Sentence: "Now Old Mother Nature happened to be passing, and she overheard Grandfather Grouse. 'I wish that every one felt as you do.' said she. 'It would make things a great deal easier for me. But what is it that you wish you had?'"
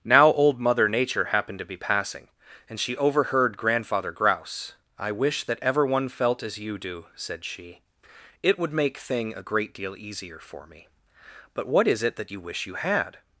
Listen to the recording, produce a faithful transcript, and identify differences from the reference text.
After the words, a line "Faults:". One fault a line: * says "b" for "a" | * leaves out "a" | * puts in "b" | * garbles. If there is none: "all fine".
"Now Old Mother Nature happened to be passing, and she overheard Grandfather Grouse. 'I wish that ever one felt as you do.' said she. 'It would make thing a great deal easier for me. But what is it that you wish you had?'"
Faults:
* says "ever" for "every"
* says "thing" for "things"